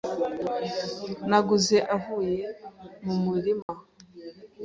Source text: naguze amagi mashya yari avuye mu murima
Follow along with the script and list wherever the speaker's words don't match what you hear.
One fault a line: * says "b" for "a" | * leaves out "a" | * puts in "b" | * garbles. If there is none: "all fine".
* leaves out "amagi mashya yari"